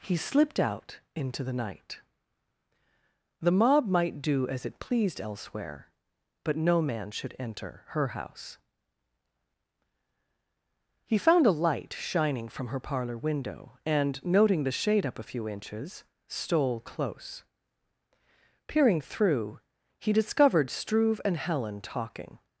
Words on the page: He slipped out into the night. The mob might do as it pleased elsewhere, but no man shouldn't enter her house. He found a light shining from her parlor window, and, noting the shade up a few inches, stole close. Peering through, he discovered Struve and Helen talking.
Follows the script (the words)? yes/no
no